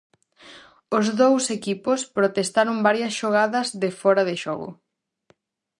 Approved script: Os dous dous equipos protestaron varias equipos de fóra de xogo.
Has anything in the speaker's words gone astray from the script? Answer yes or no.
yes